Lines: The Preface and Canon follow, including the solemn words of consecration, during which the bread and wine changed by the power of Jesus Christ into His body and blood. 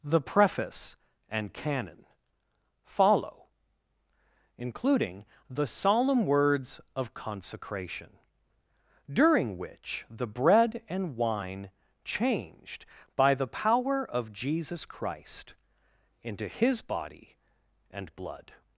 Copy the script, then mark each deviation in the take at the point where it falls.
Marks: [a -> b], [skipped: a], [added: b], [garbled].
The Preface and Canon follow, including the solemn words of consecration, during which the bread and wine changed by the power of Jesus Christ into His body and blood.